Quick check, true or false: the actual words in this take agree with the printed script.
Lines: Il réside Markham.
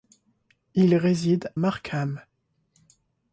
true